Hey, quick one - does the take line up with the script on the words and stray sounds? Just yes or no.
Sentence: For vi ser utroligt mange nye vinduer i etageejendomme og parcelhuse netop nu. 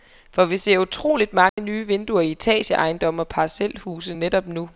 no